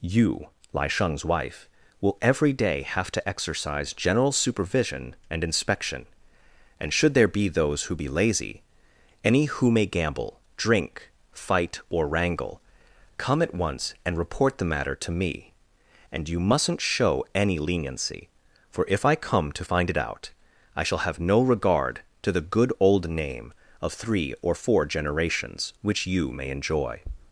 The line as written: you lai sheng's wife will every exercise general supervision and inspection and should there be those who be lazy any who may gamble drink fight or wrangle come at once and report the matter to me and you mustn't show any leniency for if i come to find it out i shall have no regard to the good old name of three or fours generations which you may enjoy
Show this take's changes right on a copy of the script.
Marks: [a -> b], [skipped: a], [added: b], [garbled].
you lai sheng's wife will every [added: day have to] exercise general supervision and inspection and should there be those who be lazy any who may gamble drink fight or wrangle come at once and report the matter to me and you mustn't show any leniency for if i come to find it out i shall have no regard to the good old name of three or [fours -> four] generations which you may enjoy